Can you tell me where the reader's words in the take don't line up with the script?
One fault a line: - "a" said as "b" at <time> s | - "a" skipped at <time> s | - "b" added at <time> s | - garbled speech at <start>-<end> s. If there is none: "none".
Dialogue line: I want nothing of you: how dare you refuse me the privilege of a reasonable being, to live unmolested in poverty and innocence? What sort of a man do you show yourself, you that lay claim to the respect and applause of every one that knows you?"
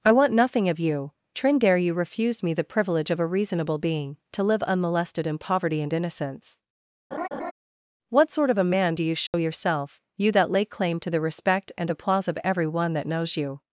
- "how" said as "trin" at 1.4 s